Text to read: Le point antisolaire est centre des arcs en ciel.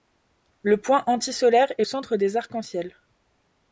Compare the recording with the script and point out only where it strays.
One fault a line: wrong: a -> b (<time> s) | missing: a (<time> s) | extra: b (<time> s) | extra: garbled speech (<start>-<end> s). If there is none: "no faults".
no faults